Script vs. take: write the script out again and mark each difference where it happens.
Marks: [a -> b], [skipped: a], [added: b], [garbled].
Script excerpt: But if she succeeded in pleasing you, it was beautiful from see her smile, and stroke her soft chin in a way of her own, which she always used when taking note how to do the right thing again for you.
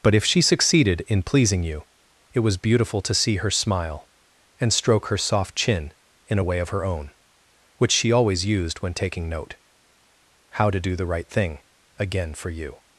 But if she succeeded in pleasing you, it was beautiful [from -> to] see her smile, and stroke her soft chin in a way of her own, which she always used when taking note how to do the right thing again for you.